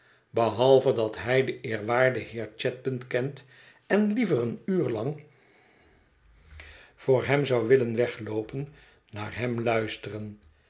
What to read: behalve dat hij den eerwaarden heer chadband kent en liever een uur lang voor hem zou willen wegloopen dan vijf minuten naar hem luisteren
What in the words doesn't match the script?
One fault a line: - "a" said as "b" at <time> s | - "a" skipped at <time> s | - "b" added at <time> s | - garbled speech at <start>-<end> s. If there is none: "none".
- "dan vijf minuten" skipped at 8.7 s